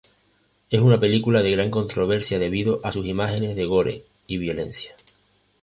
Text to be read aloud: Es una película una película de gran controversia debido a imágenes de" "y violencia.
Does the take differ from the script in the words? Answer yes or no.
yes